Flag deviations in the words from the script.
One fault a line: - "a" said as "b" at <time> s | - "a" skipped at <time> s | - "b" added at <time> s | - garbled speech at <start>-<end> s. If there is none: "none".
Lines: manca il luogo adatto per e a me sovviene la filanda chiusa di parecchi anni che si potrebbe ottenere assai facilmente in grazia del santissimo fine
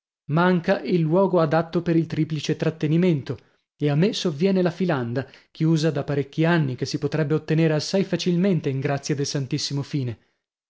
- "il triplice trattenimento" added at 1.9 s
- "di" said as "da" at 5.9 s